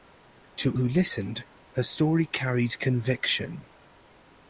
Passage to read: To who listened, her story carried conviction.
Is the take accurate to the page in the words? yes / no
yes